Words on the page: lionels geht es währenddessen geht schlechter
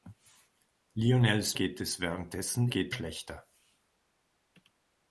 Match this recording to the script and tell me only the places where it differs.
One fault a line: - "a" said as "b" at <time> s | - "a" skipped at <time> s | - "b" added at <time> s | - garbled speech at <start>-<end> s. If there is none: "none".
none